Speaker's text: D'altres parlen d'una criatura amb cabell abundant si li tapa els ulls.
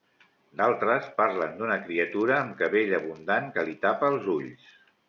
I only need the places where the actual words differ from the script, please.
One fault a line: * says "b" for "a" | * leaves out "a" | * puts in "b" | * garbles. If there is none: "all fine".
* says "que" for "si"